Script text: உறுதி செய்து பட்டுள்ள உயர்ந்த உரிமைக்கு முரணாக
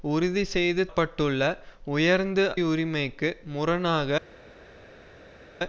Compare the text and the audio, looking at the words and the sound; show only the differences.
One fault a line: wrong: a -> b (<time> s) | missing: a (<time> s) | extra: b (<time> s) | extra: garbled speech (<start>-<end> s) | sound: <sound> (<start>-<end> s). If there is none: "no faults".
no faults